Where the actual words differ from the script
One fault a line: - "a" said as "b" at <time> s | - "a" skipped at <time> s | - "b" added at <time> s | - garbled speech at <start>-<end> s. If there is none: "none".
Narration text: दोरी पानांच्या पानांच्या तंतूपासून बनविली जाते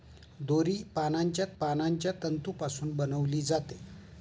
none